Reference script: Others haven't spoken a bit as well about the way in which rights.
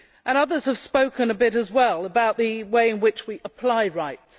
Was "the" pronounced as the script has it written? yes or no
yes